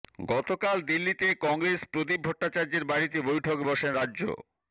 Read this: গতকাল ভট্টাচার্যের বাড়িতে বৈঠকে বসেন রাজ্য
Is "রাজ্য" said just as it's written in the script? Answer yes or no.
yes